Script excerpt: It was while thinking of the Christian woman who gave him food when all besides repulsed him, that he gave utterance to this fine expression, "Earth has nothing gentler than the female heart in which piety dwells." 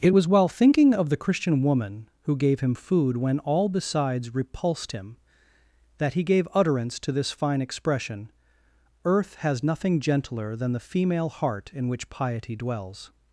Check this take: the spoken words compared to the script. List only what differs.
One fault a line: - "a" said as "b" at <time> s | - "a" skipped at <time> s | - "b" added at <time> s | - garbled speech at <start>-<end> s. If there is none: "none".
none